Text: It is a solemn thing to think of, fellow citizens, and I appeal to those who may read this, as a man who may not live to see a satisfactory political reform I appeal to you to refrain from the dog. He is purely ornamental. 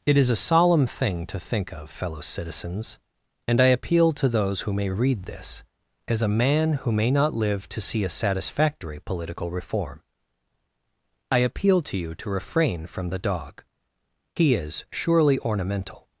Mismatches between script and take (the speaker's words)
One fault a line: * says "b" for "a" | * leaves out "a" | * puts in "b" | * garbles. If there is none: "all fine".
* says "surely" for "purely"